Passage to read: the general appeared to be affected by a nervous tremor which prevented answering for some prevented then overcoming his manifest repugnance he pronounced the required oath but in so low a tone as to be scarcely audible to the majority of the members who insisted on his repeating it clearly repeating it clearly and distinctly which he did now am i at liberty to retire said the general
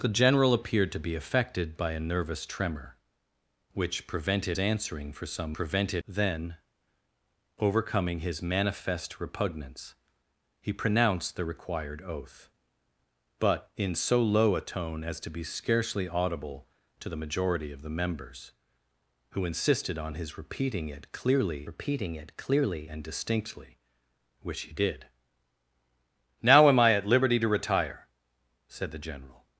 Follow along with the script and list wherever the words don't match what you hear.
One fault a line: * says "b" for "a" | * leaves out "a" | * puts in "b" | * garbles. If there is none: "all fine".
all fine